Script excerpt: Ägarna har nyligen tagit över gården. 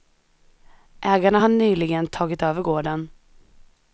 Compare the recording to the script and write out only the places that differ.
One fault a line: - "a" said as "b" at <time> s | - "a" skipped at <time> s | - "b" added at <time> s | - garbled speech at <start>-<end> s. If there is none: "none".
none